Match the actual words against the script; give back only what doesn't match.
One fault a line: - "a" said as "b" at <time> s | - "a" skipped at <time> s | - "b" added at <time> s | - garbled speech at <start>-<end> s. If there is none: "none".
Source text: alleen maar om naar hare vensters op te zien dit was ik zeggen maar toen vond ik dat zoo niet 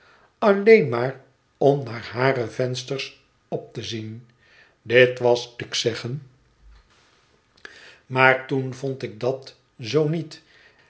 none